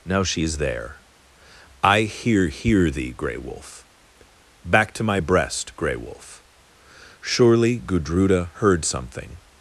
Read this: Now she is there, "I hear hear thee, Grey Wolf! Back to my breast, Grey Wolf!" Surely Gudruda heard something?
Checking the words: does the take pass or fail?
pass